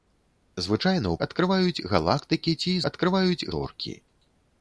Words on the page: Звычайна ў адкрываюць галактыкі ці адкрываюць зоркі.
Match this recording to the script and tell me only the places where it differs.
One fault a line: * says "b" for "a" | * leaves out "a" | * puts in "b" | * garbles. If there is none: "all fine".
all fine